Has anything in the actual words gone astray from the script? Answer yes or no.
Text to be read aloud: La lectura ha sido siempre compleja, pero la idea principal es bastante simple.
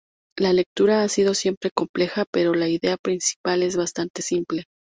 no